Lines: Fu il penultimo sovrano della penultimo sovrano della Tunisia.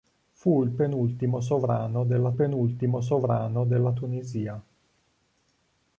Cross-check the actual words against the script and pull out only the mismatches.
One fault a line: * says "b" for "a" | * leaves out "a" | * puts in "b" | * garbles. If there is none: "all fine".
all fine